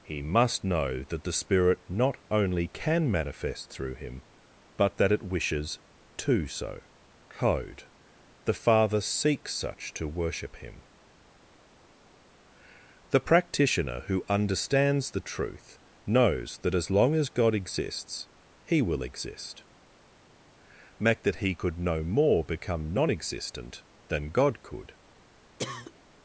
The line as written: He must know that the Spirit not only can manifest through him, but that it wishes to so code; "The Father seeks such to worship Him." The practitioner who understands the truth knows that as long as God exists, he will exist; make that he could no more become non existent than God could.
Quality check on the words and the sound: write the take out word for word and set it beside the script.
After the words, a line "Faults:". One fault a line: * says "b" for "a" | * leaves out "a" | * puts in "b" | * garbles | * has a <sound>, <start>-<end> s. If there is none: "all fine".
He must know that the Spirit not only can manifest through him, but that it wishes to so code; "The Father seeks such to worship Him." The practitioner who understands the truth knows that as long as God exists, he will exist; make that he could no more become non existent than God could.
Faults:
* has a cough, 25.6-25.9 s